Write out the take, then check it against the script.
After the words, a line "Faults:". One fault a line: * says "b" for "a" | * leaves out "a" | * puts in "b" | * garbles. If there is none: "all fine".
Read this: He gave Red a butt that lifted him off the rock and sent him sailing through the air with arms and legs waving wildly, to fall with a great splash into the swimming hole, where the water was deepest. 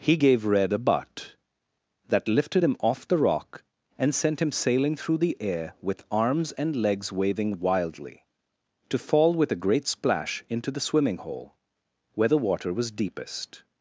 He gave Red a butt that lifted him off the rock and sent him sailing through the air with arms and legs waving wildly, to fall with a great splash into the swimming hole, where the water was deepest.
Faults:
all fine